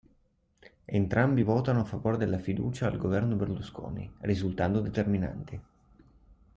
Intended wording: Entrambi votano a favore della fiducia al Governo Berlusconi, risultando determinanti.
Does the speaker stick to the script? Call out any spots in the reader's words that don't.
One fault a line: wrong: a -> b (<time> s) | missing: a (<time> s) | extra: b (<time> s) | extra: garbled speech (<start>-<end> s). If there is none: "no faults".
no faults